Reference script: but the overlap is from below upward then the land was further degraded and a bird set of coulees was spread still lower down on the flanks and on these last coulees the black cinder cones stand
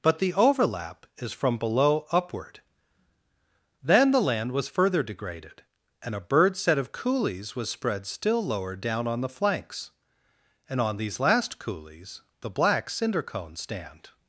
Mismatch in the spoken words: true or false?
false